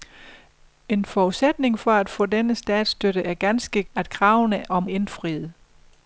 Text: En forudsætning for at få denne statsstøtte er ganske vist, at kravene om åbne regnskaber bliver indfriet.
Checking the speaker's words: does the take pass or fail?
fail